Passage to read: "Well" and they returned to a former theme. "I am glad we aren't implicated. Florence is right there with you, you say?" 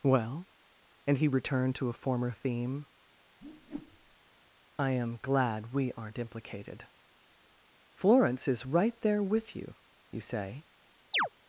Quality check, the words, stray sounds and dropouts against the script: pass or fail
fail